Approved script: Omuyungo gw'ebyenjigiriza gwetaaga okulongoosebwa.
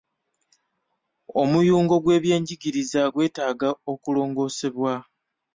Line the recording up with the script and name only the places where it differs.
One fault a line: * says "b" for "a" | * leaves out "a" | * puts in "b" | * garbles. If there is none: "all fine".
all fine